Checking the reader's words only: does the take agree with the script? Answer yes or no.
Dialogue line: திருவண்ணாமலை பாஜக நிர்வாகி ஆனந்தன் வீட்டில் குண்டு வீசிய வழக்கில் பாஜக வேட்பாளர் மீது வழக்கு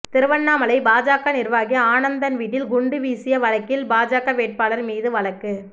yes